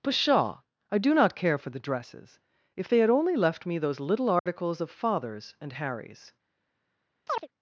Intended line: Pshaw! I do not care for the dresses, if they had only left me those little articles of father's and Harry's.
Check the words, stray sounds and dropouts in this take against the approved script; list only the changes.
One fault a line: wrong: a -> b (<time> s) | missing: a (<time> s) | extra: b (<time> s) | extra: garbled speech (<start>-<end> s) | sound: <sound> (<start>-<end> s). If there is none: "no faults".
sound: dropout (4.4-4.5 s)
sound: chirp (7.3-7.5 s)